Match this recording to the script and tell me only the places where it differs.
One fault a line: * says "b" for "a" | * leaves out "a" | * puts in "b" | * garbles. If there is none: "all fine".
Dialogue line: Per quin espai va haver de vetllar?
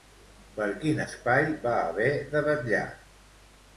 all fine